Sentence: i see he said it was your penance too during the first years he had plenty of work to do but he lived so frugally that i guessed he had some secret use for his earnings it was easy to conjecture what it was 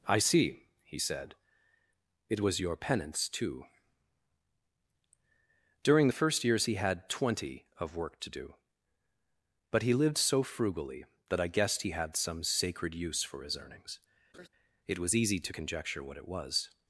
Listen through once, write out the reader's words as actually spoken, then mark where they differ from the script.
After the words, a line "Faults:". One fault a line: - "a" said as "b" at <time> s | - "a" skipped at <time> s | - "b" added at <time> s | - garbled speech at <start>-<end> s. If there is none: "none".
i see he said it was your penance too during the first years he had twenty of work to do but he lived so frugally that i guessed he had some sacred use for his earnings it was easy to conjecture what it was
Faults:
- "plenty" said as "twenty" at 7.1 s
- "secret" said as "sacred" at 12.4 s